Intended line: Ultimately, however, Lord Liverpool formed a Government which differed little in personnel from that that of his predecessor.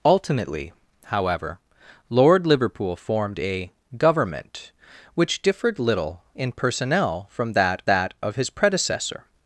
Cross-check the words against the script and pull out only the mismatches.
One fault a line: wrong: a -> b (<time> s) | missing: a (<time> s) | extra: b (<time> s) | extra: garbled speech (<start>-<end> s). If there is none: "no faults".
no faults